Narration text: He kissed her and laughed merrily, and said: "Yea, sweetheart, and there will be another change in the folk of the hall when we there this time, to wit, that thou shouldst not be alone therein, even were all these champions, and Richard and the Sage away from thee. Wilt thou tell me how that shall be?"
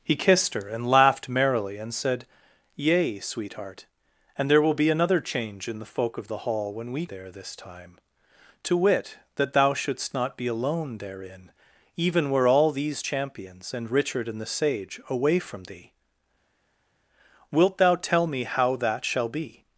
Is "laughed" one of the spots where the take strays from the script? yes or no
no